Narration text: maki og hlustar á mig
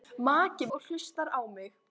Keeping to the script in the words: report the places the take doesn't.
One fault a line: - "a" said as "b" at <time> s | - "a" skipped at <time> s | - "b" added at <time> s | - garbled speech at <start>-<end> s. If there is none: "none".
none